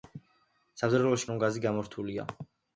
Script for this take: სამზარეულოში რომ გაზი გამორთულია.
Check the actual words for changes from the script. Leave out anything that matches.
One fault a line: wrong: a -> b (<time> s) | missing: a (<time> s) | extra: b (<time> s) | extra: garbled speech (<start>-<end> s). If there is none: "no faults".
no faults